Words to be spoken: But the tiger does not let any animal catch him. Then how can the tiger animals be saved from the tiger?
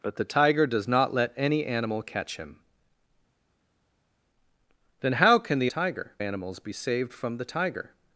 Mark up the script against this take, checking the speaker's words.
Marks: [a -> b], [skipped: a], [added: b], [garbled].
But the tiger does not let any animal catch him. Then how can the tiger animals be saved from the tiger?